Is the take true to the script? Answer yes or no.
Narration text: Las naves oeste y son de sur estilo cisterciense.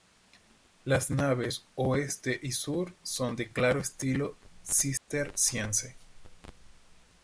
no